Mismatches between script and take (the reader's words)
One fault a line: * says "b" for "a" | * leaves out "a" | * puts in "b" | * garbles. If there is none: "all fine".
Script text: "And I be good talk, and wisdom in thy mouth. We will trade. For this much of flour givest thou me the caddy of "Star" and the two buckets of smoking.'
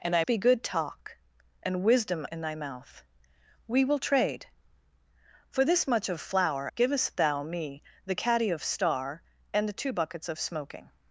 all fine